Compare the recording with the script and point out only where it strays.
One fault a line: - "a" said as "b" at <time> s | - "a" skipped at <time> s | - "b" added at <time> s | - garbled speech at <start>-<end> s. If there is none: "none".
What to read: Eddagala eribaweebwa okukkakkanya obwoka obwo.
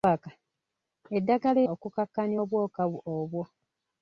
- "eribaweebwa" skipped at 1.6 s